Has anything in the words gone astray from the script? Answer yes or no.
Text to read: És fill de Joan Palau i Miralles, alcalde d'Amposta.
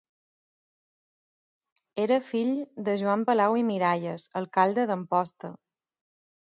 yes